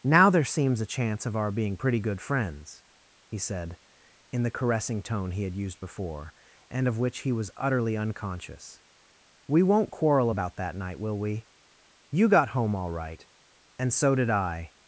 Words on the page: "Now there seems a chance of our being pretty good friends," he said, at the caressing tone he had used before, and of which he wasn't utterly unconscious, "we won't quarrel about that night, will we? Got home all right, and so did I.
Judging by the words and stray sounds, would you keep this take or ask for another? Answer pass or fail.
fail